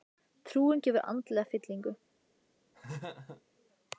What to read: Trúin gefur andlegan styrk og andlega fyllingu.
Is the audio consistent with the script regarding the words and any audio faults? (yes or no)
no